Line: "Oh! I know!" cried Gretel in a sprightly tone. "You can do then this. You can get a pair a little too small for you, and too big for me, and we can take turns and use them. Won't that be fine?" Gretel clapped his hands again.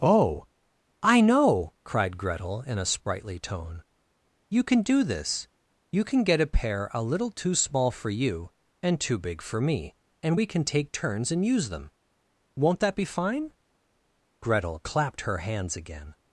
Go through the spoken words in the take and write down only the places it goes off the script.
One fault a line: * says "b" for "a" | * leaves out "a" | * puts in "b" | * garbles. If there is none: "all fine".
* leaves out "then"
* says "her" for "his"